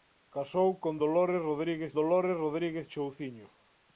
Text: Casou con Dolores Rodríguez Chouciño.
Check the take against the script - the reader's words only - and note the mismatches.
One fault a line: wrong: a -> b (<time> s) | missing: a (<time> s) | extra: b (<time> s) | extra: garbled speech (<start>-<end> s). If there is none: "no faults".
extra: Dolores Rodríguez (1.9 s)